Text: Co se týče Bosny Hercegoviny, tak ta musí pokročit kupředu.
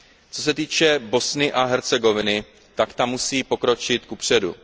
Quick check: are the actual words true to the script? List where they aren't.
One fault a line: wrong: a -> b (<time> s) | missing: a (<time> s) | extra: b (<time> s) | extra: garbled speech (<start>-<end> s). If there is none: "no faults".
extra: a (1.5 s)